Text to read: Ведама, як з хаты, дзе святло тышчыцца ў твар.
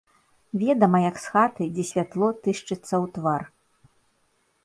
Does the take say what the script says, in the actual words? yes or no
yes